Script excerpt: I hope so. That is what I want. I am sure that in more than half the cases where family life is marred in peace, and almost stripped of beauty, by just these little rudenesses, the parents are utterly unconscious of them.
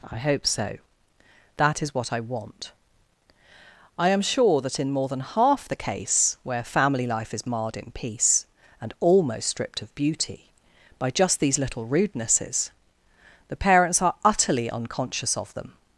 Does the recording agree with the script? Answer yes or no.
no